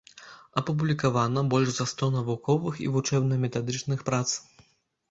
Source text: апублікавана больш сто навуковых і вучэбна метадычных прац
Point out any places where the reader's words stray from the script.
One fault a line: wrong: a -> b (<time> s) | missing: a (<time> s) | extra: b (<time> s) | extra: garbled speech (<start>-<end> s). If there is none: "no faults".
extra: за (1.8 s)